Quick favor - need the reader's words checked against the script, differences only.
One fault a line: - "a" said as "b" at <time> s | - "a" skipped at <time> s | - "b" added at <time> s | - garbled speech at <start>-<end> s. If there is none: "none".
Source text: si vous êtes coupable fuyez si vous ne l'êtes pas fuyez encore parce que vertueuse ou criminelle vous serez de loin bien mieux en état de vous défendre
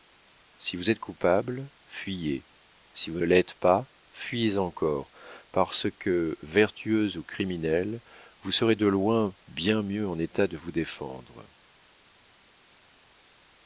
- "ne" skipped at 3.2 s